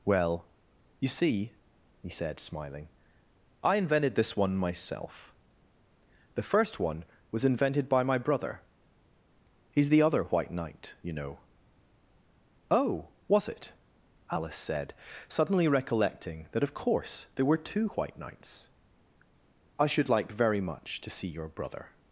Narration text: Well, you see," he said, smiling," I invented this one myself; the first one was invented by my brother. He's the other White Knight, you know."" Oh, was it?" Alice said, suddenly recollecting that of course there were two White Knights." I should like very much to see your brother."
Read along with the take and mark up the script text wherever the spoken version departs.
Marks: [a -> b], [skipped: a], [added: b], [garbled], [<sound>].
Well, you see," he said, smiling," I invented this one myself; the first one was invented by my brother. He's the other White Knight, you know."" Oh, was it?" Alice said, suddenly recollecting that of course there were two White Knights." I should like very much to see your brother."